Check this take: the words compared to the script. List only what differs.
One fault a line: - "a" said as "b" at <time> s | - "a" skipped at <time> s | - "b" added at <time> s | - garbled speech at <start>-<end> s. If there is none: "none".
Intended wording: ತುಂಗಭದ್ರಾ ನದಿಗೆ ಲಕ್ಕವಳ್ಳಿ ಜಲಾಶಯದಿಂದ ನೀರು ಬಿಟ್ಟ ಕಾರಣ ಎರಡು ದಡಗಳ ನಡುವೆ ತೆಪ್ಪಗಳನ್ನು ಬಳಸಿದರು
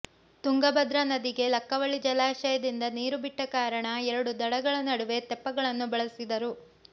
none